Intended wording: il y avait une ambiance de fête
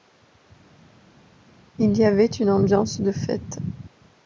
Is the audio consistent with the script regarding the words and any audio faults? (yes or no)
yes